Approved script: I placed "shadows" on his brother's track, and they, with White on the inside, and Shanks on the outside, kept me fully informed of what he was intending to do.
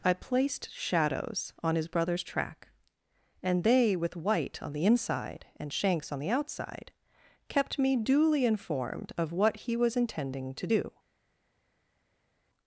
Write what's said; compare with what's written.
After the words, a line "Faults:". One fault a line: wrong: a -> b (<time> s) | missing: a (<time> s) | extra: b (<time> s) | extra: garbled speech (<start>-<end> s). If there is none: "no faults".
I placed "shadows" on his brother's track, and they, with White on the inside, and Shanks on the outside, kept me duly informed of what he was intending to do.
Faults:
wrong: fully -> duly (8.0 s)